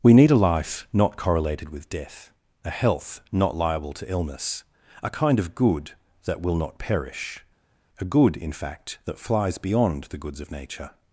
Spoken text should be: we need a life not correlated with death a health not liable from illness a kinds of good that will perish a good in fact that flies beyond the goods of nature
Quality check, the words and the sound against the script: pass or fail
fail